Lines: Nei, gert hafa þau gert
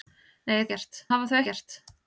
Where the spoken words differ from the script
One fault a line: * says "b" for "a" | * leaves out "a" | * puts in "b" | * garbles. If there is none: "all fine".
all fine